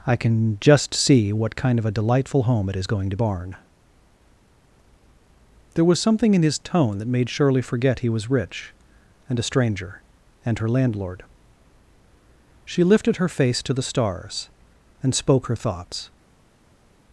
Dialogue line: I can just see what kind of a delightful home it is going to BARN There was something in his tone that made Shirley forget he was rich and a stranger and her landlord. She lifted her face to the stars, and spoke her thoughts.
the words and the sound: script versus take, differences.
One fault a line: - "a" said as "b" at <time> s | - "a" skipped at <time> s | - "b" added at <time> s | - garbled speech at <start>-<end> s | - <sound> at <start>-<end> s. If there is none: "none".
none